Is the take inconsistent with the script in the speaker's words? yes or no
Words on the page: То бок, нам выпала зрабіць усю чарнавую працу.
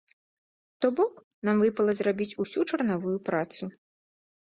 no